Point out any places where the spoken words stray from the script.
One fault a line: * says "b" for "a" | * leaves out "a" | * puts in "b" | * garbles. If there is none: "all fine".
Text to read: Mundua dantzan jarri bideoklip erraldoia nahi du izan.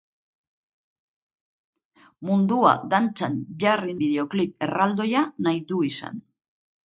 all fine